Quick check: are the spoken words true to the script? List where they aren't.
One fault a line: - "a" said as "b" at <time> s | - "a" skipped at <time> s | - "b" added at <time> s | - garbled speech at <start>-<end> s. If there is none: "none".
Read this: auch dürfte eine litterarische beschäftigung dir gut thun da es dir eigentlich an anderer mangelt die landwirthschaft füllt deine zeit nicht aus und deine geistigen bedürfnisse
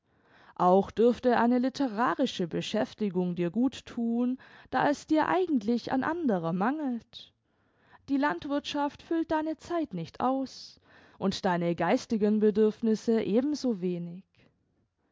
none